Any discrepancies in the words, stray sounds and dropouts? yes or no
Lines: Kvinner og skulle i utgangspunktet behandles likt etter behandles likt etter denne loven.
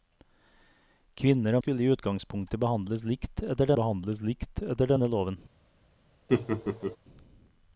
yes